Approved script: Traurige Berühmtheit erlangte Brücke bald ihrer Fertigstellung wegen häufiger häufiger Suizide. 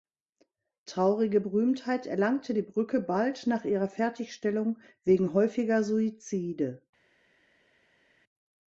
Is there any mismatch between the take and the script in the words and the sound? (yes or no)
yes